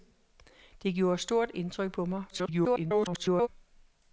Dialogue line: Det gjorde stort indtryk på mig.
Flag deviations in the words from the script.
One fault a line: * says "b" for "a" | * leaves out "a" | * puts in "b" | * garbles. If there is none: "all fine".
* garbles